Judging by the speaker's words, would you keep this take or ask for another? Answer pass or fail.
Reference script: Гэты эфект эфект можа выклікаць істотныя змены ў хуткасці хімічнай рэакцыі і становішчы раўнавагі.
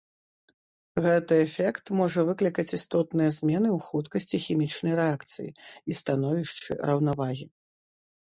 fail